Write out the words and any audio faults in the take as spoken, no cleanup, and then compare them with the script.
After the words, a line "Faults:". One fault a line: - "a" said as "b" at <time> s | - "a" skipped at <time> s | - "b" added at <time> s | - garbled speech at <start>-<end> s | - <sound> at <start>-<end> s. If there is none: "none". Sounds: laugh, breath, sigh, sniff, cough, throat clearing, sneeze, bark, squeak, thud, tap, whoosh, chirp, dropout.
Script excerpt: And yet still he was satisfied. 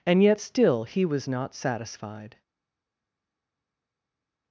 And yet still he was not satisfied.
Faults:
- "not" added at 1.3 s